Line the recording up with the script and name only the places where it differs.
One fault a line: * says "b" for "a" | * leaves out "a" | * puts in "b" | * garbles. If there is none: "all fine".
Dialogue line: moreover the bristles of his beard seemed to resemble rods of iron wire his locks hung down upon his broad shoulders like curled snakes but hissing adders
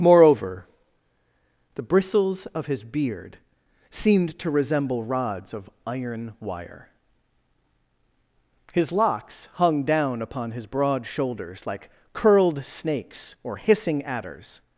* says "or" for "but"